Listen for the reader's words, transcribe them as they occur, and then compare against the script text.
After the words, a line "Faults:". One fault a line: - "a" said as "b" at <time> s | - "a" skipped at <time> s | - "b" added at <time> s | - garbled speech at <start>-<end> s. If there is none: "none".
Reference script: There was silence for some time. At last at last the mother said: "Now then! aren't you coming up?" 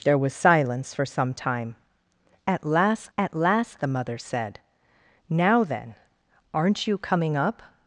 There was silence for some time. At last at last the mother said: "Now then! aren't you coming up?"
Faults:
none